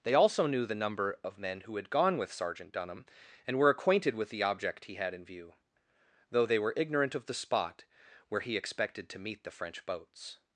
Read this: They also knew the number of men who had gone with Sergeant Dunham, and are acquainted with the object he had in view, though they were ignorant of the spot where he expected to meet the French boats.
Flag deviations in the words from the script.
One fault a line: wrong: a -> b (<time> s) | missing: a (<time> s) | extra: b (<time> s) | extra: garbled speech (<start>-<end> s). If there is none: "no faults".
wrong: are -> were (3.6 s)